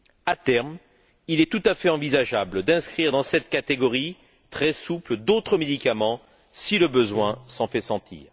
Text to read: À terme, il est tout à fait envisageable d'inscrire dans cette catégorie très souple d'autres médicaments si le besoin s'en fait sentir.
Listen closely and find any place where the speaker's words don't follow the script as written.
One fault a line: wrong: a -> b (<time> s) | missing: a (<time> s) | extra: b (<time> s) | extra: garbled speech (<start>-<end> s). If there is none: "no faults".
no faults